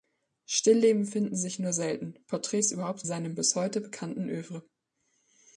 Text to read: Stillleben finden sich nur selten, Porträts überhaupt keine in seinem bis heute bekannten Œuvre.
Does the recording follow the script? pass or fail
fail